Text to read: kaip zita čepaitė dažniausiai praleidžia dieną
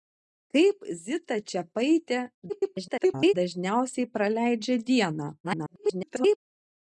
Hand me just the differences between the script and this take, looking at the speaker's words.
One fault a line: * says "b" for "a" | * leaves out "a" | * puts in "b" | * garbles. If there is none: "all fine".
* garbles
* garbles